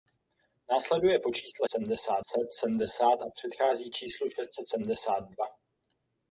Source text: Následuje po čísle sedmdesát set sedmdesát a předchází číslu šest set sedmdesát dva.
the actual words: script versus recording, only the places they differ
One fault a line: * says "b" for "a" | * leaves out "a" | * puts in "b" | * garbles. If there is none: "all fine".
all fine